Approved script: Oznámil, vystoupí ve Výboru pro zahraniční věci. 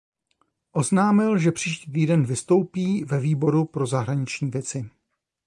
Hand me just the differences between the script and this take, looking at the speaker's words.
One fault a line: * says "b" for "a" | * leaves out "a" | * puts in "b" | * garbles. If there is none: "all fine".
* puts in "že příští týden"